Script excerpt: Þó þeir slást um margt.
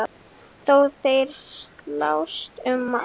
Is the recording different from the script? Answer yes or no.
no